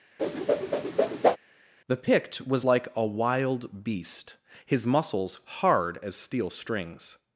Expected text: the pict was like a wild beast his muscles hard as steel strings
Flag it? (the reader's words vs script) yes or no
no